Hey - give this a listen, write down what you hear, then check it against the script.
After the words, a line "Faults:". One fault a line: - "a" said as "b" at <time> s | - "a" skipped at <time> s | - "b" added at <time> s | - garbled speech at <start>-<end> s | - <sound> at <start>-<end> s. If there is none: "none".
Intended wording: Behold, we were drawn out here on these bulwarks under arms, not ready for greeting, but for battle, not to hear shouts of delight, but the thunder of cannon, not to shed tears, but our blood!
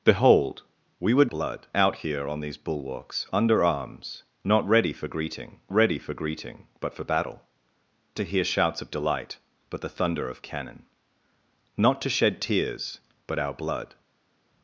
Behold, we were blood out here on these bulwarks under arms, not ready for greeting ready for greeting, but for battle, to hear shouts of delight, but the thunder of cannon, not to shed tears, but our blood!
Faults:
- "drawn" said as "blood" at 1.3 s
- "ready for greeting" added at 5.7 s
- "not" skipped at 7.4 s